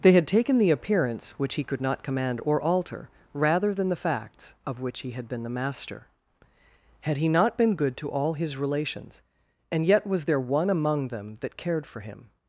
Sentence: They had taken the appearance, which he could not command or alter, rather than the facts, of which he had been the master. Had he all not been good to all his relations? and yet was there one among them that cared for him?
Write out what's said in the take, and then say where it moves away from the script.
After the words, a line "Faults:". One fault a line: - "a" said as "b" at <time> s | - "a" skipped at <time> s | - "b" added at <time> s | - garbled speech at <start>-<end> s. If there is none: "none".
They had taken the appearance, which he could not command or alter, rather than the facts, of which he had been the master. Had he not been good to all his relations? and yet was there one among them that cared for him?
Faults:
- "all" skipped at 7.3 s